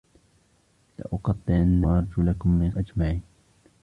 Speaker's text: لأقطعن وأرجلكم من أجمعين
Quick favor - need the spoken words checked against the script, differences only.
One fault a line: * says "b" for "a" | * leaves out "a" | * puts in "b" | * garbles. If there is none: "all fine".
all fine